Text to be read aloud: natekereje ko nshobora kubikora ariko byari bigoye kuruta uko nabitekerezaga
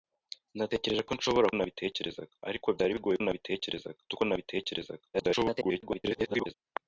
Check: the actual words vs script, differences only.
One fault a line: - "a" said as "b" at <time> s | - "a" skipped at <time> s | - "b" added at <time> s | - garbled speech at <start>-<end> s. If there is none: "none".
- "kubikora" said as "nabitekerezaga" at 1.5 s
- "kuruta" said as "nabitekerezaga" at 3.2 s
- garbled speech at 5.1-6.5 s